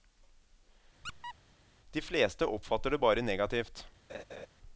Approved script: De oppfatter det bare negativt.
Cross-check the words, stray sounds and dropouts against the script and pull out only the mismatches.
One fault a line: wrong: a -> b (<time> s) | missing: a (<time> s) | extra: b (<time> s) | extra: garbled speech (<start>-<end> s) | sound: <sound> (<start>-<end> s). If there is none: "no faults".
sound: squeak (1.0-1.3 s)
extra: fleste (2.0 s)
sound: laugh (4.1-4.5 s)